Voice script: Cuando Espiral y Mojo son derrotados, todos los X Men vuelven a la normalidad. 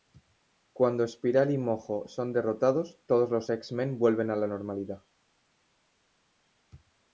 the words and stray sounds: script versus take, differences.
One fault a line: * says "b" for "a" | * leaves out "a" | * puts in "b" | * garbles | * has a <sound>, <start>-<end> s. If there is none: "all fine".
all fine